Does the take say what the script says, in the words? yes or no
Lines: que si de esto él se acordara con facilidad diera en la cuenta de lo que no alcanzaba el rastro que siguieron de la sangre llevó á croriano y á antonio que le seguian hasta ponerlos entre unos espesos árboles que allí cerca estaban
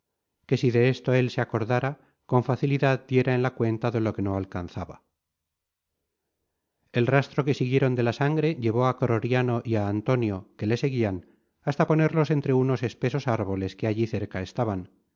yes